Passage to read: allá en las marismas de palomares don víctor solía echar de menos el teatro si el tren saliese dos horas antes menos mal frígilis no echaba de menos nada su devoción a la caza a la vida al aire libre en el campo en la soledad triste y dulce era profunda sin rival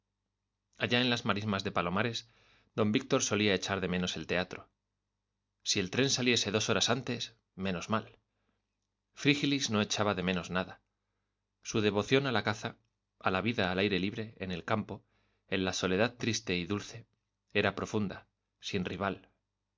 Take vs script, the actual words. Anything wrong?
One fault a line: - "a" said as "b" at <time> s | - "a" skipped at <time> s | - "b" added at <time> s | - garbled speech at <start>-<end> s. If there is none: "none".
none